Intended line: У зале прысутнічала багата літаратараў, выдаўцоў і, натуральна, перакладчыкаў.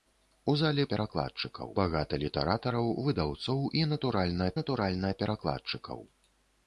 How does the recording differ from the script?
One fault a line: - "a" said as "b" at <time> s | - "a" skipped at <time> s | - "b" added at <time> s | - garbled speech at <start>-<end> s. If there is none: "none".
- "прысутнічала" said as "перакладчыкаў" at 0.9 s
- "натуральна" added at 4.6 s